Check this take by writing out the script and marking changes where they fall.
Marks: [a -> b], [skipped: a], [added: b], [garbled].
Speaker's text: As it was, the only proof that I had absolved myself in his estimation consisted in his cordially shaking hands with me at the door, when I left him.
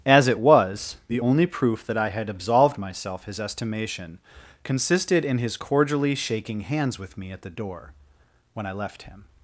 As it was, the only proof that I had absolved myself [skipped: in] his estimation consisted in his cordially shaking hands with me at the door, when I left him.